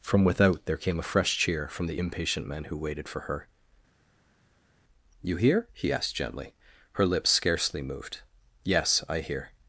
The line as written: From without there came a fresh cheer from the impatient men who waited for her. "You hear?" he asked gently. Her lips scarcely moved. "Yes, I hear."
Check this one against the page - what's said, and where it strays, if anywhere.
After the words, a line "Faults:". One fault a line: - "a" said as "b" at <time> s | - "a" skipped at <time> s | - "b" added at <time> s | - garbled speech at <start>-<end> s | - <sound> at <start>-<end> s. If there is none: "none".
From without there came a fresh cheer from the impatient men who waited for her. "You hear?" he asked gently. Her lips scarcely moved. "Yes, I hear."
Faults:
none